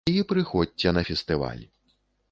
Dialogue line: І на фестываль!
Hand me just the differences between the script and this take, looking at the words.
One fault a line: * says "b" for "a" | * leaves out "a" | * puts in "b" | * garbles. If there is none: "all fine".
* puts in "прыходзьце"